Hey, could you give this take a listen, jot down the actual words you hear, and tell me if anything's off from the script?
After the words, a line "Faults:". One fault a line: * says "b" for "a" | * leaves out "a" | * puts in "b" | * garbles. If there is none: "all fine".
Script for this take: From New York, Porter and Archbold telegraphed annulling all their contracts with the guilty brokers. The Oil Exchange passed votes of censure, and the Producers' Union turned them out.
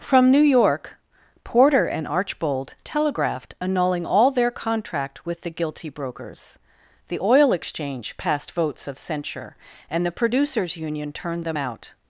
From New York, Porter and Archbold telegraphed annulling all their contract with the guilty brokers. The Oil Exchange passed votes of censure, and the Producers' Union turned them out.
Faults:
* says "contract" for "contracts"